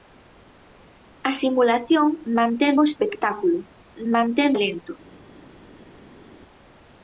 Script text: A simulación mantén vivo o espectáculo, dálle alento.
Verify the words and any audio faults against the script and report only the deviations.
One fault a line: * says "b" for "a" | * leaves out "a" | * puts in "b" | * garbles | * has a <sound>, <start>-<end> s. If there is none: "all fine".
* leaves out "vivo"
* says "mantén" for "dálle"